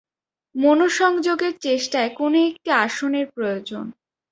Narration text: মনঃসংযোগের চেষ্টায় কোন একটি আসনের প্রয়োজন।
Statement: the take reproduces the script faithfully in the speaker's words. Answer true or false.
true